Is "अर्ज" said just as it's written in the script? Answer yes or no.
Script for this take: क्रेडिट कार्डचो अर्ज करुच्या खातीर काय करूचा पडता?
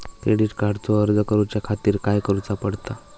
yes